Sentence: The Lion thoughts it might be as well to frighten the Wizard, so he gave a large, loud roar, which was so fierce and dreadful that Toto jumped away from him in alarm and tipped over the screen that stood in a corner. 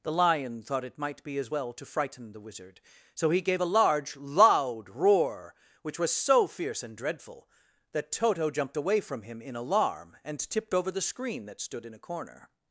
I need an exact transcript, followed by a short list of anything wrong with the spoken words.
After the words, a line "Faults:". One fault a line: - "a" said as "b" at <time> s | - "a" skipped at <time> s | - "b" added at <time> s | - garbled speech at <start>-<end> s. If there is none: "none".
The Lion thought it might be as well to frighten the Wizard, so he gave a large, loud roar, which was so fierce and dreadful that Toto jumped away from him in alarm and tipped over the screen that stood in a corner.
Faults:
- "thoughts" said as "thought" at 0.6 s